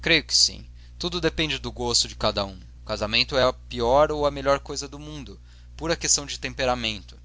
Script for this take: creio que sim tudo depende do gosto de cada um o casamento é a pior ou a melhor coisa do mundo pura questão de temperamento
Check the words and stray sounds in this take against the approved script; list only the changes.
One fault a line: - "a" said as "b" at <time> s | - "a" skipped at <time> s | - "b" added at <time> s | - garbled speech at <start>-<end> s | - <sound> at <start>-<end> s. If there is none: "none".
none